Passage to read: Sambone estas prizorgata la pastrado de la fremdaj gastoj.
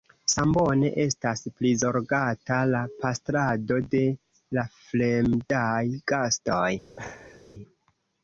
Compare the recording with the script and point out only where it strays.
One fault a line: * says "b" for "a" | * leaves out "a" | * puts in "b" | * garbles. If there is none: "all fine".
all fine